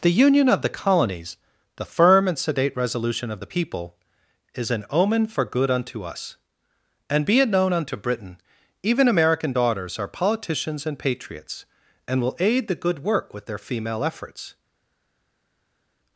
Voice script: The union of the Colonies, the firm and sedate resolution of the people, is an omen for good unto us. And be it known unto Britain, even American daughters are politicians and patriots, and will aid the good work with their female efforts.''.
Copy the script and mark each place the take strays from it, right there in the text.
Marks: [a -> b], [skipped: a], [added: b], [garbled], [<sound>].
The union of the Colonies, the firm and sedate resolution of the people, is an omen for good unto us. And be it known unto Britain, even American daughters are politicians and patriots, and will aid the good work with their female efforts.''.